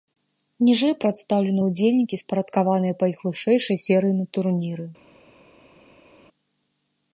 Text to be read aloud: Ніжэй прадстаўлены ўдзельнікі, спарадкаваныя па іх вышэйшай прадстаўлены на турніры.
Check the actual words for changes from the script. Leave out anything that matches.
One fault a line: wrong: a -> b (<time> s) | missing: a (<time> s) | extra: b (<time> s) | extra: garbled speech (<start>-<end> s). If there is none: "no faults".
wrong: прадстаўлены -> серыі (3.9 s)